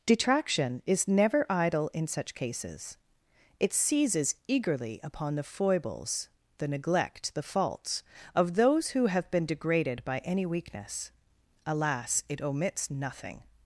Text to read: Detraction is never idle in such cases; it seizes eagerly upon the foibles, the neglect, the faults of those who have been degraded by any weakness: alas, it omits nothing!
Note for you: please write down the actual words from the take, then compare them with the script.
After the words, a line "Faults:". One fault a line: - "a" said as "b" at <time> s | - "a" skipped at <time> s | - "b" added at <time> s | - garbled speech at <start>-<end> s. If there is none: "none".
Detraction is never idle in such cases; it seizes eagerly upon the foibles, the neglect, the faults of those who have been degraded by any weakness: alas, it omits nothing!
Faults:
none